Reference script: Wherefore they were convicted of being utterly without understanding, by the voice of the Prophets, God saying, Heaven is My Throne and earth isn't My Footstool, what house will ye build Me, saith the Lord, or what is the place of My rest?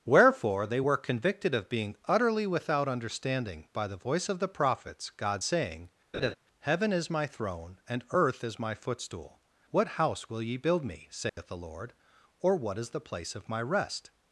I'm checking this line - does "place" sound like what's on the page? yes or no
yes